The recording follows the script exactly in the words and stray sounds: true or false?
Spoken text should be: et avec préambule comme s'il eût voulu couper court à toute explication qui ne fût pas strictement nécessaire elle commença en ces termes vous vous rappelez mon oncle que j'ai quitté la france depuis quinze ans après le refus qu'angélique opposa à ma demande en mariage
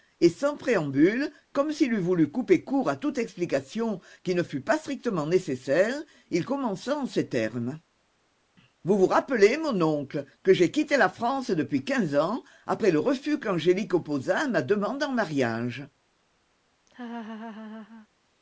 false